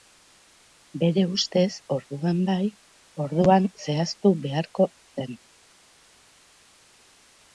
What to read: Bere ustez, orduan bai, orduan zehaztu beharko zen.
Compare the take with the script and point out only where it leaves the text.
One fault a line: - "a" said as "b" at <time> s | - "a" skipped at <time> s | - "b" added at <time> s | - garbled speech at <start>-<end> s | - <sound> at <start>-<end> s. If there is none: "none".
none